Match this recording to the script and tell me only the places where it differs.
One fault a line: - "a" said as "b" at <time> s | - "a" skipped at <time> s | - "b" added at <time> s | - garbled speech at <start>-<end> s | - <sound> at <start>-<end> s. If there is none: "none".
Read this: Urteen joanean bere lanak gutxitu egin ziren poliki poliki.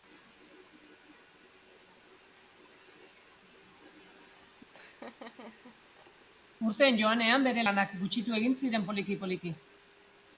- laugh at 4.7-6.3 s